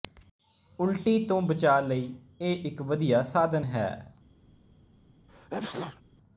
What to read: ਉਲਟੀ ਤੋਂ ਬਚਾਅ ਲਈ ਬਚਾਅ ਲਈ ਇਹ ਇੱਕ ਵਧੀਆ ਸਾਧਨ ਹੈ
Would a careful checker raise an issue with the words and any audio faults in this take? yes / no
yes